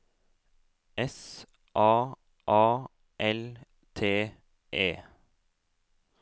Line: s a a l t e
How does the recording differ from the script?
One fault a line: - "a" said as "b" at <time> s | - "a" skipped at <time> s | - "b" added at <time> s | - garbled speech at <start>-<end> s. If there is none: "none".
none